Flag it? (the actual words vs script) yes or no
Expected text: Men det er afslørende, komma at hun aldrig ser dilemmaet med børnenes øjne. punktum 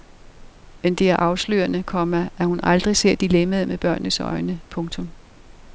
no